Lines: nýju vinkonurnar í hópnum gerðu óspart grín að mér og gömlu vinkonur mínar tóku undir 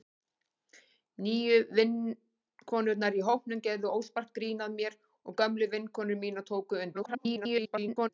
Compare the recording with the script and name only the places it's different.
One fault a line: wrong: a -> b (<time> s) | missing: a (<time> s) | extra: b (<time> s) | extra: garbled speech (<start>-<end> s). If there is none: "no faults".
extra: garbled speech (6.9-8.1 s)